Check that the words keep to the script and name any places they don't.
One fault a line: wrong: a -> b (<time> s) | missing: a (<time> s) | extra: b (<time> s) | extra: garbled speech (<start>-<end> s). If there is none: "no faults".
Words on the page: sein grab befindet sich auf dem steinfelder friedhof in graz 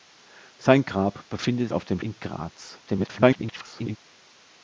missing: sich (1.7 s)
missing: steinfelder friedhof (2.0 s)
extra: garbled speech (2.9-4.0 s)